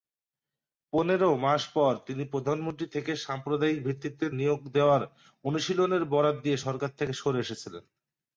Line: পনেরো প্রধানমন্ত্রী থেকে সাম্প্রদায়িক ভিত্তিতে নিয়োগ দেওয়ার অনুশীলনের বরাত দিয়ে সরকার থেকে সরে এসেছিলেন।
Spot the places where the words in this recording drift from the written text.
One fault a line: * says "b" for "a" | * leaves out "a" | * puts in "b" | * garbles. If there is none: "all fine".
* puts in "মাস পর তিনি"